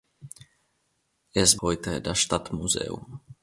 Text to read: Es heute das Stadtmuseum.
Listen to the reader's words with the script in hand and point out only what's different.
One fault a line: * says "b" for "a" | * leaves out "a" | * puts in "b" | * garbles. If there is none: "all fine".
all fine